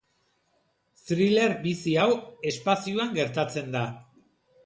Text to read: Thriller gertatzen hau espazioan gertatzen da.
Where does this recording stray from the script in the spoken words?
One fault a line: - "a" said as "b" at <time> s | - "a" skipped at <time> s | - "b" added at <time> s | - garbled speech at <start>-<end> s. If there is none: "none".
- "gertatzen" said as "bizi" at 1.6 s